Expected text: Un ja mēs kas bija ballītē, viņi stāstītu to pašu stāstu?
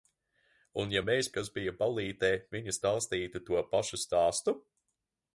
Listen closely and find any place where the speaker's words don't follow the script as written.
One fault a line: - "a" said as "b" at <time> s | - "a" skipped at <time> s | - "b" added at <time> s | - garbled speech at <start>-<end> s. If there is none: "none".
none